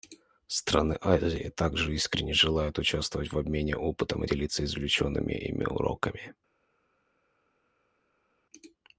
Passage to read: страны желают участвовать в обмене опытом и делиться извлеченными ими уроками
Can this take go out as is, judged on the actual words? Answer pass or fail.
fail